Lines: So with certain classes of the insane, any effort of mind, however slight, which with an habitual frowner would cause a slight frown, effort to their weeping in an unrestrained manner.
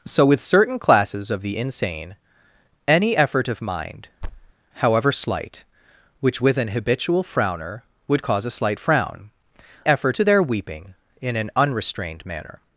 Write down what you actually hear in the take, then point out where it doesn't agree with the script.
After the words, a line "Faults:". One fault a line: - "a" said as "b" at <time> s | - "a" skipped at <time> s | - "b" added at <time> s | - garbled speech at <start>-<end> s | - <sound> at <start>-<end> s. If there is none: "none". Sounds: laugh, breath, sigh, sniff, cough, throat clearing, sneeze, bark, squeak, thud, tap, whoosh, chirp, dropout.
So with certain classes of the insane, any effort of mind, however slight, which with an habitual frowner would cause a slight frown, effort to their weeping in an unrestrained manner.
Faults:
- thud at 4.2-4.5 s